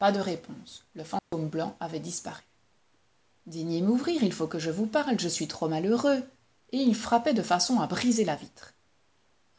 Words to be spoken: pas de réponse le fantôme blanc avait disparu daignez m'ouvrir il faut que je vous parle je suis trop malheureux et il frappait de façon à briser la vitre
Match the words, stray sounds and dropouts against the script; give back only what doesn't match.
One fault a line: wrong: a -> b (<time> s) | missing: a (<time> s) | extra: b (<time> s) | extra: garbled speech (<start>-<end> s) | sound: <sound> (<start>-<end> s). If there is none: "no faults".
sound: dropout (1.2-1.3 s)